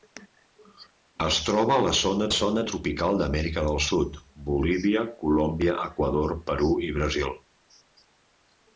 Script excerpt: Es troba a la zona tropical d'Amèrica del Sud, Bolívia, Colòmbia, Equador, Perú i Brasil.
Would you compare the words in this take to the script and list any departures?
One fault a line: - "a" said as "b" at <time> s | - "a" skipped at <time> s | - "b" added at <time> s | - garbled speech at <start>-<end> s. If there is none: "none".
- "zona" added at 2.4 s